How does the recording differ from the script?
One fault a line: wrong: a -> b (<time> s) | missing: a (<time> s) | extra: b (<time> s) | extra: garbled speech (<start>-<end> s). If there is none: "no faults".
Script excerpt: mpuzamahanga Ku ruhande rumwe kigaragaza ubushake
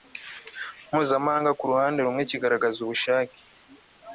no faults